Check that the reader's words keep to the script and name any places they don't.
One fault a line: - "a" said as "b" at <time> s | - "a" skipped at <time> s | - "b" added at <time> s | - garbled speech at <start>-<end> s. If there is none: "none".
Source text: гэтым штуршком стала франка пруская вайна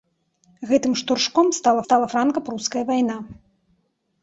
- "стала" added at 1.8 s